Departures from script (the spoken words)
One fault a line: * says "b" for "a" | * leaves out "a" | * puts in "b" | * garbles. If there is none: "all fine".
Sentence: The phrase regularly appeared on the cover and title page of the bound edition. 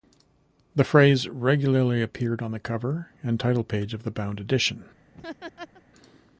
all fine